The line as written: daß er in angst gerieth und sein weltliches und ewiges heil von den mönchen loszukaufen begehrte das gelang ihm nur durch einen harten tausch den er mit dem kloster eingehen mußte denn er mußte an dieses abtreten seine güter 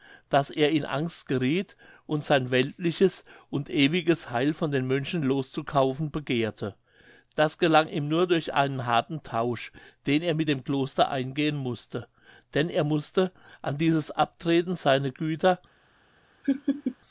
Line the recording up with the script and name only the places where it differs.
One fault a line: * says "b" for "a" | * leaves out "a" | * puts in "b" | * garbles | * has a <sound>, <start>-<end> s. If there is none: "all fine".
* has a laugh, 16.4-17.0 s